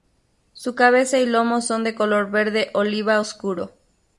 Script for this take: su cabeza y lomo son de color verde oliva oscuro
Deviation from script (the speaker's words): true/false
false